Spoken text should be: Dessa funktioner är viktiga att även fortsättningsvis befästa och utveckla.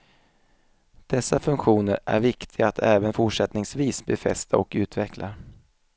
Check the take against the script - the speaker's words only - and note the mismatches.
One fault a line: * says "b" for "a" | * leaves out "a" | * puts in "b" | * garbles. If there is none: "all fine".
all fine